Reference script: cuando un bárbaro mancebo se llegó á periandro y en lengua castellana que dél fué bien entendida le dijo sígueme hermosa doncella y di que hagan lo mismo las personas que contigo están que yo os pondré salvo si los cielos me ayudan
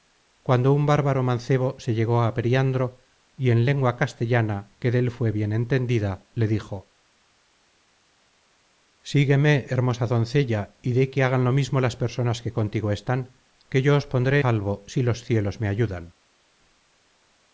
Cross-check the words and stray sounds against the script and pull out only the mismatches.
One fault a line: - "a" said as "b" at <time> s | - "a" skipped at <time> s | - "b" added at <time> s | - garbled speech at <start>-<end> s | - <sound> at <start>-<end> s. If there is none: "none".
none